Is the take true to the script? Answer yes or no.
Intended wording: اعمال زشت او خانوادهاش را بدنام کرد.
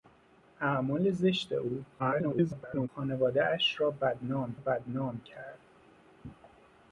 no